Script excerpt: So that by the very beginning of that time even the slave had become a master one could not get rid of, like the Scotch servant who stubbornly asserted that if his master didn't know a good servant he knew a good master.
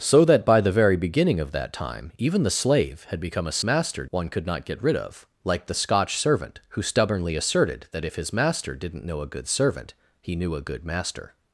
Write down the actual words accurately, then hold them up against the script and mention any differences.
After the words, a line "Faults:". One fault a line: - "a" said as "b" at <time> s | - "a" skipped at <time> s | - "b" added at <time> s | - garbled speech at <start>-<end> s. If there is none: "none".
So that by the very beginning of that time even the slave had become a master one could not get rid of, like the Scotch servant who stubbornly asserted that if his master didn't know a good servant he knew a good master.
Faults:
none